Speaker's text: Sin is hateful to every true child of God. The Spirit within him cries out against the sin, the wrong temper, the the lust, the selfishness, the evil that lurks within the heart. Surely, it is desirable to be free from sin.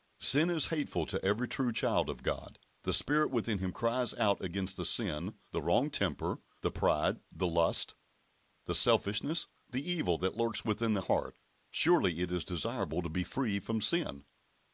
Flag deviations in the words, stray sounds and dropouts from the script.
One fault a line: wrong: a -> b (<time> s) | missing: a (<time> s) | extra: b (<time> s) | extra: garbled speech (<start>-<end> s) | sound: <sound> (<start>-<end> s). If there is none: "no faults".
extra: pride (6.7 s)